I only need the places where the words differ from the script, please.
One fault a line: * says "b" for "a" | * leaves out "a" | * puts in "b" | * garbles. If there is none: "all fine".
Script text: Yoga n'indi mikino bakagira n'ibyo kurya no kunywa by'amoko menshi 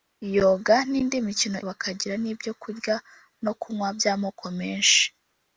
all fine